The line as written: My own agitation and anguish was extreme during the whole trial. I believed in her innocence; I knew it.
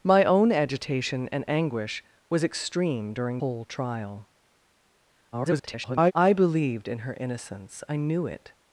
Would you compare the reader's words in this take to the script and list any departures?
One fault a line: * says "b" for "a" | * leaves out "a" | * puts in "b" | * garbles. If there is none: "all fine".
* leaves out "the"
* garbles